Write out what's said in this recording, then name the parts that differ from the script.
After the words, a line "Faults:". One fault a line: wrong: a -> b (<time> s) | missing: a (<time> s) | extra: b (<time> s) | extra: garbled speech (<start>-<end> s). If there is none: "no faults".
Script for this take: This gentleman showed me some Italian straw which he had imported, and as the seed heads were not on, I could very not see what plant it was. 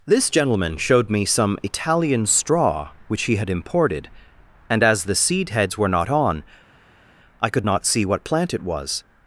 This gentleman showed me some Italian straw which he had imported, and as the seed heads were not on, I could not see what plant it was.
Faults:
missing: very (7.7 s)